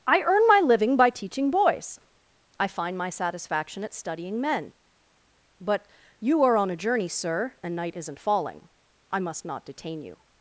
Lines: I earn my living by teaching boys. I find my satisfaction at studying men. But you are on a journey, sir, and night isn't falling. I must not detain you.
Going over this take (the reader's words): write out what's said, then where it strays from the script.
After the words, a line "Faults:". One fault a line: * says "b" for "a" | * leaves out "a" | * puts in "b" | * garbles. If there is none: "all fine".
I earn my living by teaching boys. I find my satisfaction at studying men. But you are on a journey, sir, and night isn't falling. I must not detain you.
Faults:
all fine